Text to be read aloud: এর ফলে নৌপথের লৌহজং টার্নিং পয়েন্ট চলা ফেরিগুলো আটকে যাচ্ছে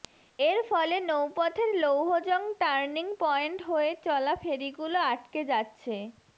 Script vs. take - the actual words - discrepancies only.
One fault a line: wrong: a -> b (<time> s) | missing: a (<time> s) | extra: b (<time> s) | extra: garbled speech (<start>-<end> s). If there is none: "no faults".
extra: হয়ে (3.7 s)